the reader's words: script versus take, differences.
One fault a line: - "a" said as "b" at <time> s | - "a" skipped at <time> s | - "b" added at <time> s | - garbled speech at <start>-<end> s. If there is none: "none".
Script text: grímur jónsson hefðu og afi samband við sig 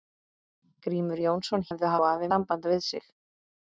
none